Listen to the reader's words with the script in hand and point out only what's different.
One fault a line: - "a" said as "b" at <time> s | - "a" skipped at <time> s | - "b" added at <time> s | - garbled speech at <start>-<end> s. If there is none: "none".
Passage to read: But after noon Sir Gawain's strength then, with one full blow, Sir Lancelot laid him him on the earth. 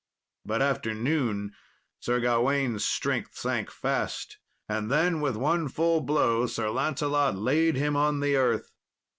- "sank fast and" added at 3.4 s
- "him" skipped at 8.0 s